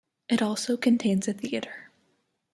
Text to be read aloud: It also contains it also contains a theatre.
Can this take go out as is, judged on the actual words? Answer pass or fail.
fail